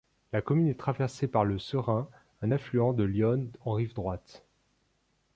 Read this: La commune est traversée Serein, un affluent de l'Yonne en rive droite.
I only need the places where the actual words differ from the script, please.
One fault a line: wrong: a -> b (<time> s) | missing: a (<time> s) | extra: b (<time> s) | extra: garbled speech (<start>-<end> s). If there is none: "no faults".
extra: par le (1.3 s)